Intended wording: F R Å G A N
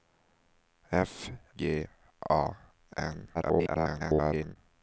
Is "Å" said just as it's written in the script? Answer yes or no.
no